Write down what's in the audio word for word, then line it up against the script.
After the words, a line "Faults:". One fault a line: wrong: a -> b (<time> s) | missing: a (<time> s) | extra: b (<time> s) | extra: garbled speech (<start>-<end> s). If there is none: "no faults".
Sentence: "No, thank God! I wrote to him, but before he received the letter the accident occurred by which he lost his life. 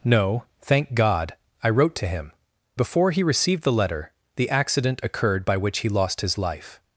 "No, thank God! I wrote to him, before he received the letter the accident occurred by which he lost his life.
Faults:
missing: but (2.3 s)